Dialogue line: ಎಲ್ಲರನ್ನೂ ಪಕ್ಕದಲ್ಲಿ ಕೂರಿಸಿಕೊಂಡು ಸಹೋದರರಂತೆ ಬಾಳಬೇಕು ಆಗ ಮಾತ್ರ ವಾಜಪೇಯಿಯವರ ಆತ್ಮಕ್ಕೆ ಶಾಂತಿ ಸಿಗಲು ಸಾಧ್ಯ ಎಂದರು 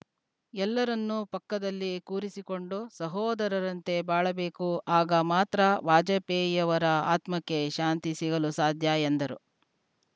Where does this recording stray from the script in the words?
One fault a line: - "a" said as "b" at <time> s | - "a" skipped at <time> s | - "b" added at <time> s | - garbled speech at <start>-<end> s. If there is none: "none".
none